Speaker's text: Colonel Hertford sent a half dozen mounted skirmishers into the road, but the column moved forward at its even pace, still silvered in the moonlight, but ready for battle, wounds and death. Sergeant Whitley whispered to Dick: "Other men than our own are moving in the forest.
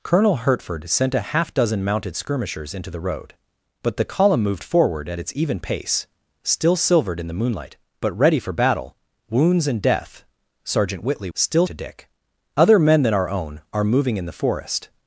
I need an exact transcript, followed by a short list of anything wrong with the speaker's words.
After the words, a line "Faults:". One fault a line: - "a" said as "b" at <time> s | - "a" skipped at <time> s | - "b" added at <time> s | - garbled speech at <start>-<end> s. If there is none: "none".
Colonel Hertford sent a half dozen mounted skirmishers into the road, but the column moved forward at its even pace, still silvered in the moonlight, but ready for battle, wounds and death. Sergeant Whitley still to Dick: "Other men than our own are moving in the forest.
Faults:
- "whispered" said as "still" at 11.3 s